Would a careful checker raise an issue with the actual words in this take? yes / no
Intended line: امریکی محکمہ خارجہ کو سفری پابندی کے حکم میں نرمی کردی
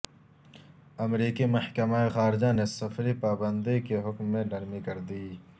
yes